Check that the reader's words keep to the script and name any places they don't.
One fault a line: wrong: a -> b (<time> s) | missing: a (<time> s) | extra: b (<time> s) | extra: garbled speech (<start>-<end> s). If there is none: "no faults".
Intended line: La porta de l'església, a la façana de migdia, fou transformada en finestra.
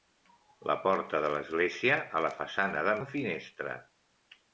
missing: migdia fou transformada (3.0 s)